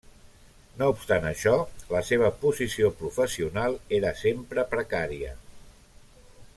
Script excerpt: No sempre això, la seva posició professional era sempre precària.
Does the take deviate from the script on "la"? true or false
false